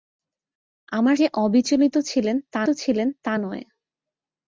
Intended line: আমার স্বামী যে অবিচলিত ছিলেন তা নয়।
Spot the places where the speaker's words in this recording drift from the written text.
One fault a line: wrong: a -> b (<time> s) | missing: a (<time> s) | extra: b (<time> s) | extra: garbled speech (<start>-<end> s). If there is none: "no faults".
missing: স্বামী (1.1 s)
extra: ছিলেন তা (2.7 s)